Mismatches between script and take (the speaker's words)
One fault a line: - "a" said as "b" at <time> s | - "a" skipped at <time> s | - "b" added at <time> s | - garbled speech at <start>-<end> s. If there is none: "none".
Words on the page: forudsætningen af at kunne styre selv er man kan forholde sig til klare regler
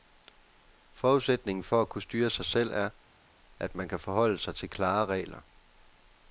- "af" said as "for" at 1.6 s
- "sig" added at 2.3 s
- "at" added at 3.6 s